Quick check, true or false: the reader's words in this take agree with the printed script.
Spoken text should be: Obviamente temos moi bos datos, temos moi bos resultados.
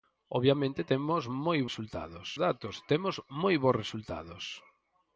false